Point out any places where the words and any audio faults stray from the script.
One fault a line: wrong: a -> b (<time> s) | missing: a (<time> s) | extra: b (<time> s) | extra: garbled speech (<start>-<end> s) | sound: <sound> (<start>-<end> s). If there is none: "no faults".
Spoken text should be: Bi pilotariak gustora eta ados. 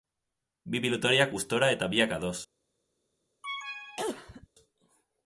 extra: biak (1.9 s)
sound: cough (3.4-4.5 s)